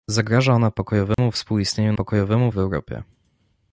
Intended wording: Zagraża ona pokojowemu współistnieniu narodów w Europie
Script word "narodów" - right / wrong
wrong